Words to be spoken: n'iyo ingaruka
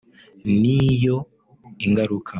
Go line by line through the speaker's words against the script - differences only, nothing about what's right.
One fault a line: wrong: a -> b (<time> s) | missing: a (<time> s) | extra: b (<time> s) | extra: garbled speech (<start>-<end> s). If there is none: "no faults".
no faults